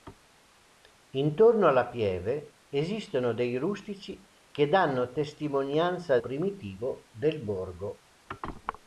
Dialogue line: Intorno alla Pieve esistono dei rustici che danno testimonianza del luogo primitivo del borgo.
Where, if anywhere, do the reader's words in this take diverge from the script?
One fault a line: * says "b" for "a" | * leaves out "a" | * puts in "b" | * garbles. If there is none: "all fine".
* leaves out "del luogo"